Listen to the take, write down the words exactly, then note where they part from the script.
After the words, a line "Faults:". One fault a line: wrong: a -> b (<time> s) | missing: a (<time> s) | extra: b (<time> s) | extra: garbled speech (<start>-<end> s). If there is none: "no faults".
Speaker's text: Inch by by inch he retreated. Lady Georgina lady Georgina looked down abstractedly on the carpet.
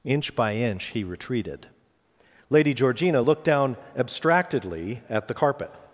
Inch by inch he retreated. Lady Georgina looked down abstractedly at the carpet.
Faults:
missing: by (0.6 s)
missing: lady Georgina (3.2 s)
wrong: on -> at (5.1 s)